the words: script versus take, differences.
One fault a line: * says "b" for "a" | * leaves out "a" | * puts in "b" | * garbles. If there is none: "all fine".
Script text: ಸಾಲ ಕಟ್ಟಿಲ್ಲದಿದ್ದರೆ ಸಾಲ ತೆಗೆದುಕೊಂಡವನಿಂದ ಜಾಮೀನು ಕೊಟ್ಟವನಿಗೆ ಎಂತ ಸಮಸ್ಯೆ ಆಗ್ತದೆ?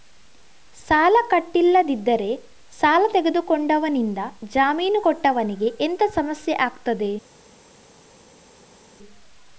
all fine